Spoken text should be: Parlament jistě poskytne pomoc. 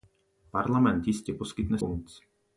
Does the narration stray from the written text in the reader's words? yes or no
no